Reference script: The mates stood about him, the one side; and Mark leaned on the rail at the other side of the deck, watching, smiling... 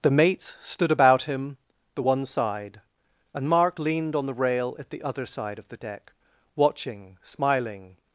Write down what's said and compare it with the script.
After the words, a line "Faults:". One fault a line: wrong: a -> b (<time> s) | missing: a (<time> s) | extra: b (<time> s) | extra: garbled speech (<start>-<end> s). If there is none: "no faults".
The mates stood about him, the one side; and Mark leaned on the rail at the other side of the deck, watching, smiling...
Faults:
no faults